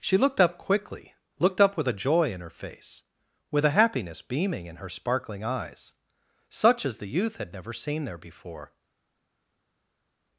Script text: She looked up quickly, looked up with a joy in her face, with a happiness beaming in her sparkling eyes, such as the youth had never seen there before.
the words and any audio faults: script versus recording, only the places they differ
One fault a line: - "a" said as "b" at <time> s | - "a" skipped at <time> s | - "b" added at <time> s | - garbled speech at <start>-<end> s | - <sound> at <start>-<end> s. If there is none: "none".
none